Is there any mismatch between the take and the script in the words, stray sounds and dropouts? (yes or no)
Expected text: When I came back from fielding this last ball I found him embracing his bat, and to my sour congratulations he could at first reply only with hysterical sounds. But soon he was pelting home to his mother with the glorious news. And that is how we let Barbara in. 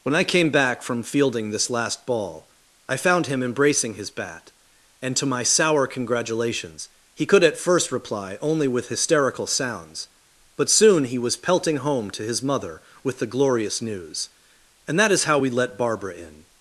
no